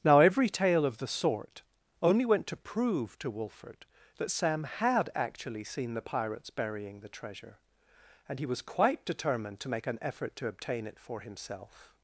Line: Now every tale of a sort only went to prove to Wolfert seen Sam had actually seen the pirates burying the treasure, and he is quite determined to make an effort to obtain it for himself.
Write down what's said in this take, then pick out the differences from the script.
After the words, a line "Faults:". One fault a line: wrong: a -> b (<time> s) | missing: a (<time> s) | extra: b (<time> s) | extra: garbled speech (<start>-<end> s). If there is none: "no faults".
Now every tale of the sort only went to prove to Wolfert that Sam had actually seen the pirates burying the treasure, and he was quite determined to make an effort to obtain it for himself.
Faults:
wrong: a -> the (1.0 s)
wrong: seen -> that (4.2 s)
wrong: is -> was (8.5 s)